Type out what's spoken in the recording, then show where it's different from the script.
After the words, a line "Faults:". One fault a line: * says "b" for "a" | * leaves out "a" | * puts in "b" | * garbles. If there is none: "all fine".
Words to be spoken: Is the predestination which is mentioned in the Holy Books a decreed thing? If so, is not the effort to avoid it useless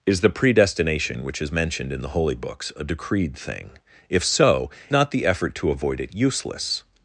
Is the predestination which is mentioned in the Holy Books a decreed thing? If so, not the effort to avoid it useless
Faults:
* leaves out "is"